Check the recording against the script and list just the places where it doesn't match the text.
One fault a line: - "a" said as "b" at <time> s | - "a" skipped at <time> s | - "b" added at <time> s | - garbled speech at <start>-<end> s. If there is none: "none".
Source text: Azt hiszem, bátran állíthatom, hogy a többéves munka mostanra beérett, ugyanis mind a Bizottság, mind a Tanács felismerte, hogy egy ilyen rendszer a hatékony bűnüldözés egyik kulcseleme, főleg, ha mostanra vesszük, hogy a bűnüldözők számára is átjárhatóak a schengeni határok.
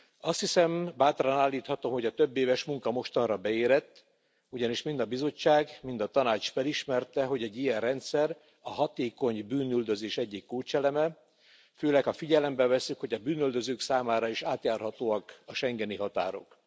- "mostanra" said as "figyelembe" at 12.1 s